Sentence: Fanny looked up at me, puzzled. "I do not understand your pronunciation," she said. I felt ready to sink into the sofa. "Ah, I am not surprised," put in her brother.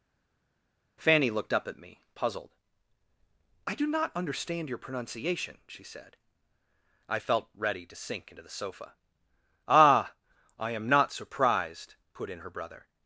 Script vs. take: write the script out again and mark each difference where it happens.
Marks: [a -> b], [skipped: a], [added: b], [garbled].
Fanny looked up at me, puzzled. "I do not understand your pronunciation," she said. I felt ready to sink into the sofa. "Ah, I am not surprised," put in her brother.